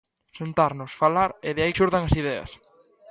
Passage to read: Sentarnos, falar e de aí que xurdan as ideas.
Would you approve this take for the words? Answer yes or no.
no